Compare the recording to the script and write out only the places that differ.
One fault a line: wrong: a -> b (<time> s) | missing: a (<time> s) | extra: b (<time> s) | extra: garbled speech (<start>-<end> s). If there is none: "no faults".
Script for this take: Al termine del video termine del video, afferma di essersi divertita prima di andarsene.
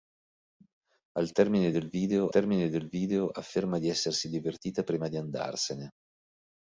no faults